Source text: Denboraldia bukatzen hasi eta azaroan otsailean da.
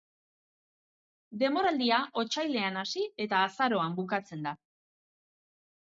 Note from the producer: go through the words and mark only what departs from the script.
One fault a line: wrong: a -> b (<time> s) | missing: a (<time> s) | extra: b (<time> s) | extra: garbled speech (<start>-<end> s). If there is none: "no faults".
wrong: bukatzen -> otsailean (2.2 s)
wrong: otsailean -> bukatzen (4.0 s)